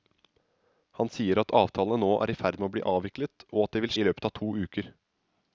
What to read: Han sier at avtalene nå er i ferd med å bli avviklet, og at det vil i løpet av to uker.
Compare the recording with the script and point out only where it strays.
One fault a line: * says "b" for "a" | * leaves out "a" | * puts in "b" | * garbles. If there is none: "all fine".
all fine